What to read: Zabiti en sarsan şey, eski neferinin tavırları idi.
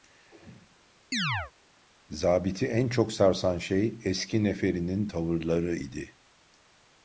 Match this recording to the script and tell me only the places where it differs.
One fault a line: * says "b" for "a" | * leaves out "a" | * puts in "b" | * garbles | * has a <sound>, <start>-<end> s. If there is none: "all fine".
* has a chirp, 1.1-1.5 s
* puts in "çok"